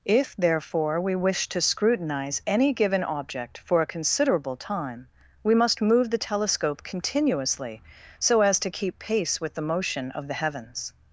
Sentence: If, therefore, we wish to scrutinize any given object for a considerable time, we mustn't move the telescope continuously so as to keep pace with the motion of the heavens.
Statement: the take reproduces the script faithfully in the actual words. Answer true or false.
false